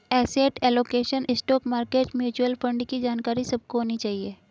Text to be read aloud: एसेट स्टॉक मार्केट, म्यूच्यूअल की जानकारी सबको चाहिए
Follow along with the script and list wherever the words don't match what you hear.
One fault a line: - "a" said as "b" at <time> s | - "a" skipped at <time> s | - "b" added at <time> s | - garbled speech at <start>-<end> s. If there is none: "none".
- "एलोकेशन" added at 0.6 s
- "फण्ड" added at 2.6 s
- "होनी" added at 3.8 s